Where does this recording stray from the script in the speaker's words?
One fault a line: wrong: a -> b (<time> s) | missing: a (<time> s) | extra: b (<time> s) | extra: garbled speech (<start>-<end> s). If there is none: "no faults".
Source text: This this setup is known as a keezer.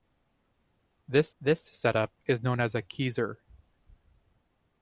no faults